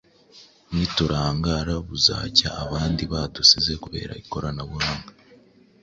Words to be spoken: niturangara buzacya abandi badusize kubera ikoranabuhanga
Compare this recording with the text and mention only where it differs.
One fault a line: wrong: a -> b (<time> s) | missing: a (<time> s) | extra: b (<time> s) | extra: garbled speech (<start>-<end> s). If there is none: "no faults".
no faults